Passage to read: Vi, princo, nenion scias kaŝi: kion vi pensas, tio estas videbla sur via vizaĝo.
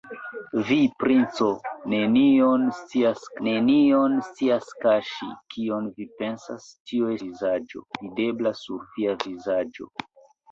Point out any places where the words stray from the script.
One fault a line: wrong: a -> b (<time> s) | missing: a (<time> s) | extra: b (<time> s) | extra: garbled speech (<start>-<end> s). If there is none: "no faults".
extra: nenion scias (3.5 s)
wrong: estas -> vizaĝo (7.2 s)